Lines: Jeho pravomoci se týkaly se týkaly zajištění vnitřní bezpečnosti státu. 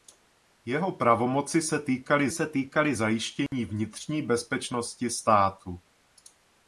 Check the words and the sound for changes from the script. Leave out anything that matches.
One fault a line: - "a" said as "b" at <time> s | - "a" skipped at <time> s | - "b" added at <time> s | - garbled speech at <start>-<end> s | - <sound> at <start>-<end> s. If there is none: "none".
- dropout at 3.5-3.5 s